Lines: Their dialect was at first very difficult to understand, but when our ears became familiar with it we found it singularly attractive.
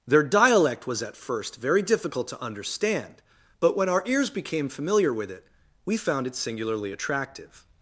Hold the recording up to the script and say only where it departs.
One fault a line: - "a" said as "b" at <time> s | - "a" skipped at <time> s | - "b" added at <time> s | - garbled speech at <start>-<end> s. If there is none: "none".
none